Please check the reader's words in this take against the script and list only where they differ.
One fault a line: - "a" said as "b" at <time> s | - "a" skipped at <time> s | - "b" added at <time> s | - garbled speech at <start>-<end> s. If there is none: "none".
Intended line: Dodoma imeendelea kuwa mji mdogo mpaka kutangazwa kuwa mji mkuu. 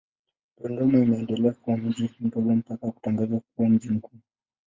none